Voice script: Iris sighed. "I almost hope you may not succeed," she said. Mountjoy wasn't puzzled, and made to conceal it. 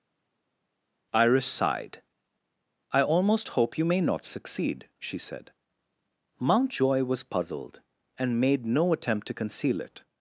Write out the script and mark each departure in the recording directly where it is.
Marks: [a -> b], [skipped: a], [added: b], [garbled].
Iris sighed. "I almost hope you may not succeed," she said. Mountjoy [wasn't -> was] puzzled, and made [added: no attempt] to conceal it.